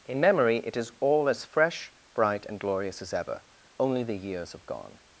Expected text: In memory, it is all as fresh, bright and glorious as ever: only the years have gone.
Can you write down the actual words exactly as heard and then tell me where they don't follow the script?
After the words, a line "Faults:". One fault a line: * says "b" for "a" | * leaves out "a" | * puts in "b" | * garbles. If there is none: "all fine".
In memory, it is all as fresh, bright and glorious as ever: only the years have gone.
Faults:
all fine